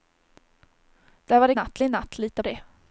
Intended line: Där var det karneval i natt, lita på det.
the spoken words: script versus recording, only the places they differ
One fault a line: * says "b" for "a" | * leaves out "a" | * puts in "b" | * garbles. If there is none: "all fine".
* says "natt" for "karneval"
* leaves out "på"